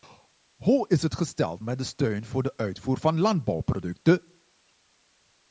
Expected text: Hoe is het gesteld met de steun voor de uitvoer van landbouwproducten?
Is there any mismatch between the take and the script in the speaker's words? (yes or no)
no